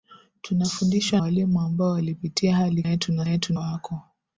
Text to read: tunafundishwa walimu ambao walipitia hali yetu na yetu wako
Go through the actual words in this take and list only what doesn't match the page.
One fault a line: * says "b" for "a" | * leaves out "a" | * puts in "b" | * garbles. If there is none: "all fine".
all fine